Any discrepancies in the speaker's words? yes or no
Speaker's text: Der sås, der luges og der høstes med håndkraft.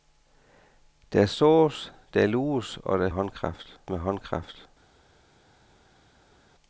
yes